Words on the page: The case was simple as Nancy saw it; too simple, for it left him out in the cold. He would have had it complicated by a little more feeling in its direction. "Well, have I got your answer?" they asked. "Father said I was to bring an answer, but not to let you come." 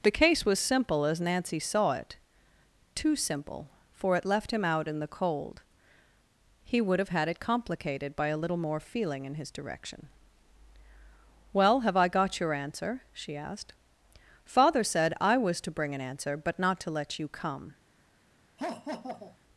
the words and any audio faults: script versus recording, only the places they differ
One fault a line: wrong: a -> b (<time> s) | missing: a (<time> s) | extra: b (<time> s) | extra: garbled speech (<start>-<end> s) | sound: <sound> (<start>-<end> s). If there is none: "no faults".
wrong: its -> his (9.3 s)
wrong: they -> she (13.1 s)
sound: laugh (18.6-19.4 s)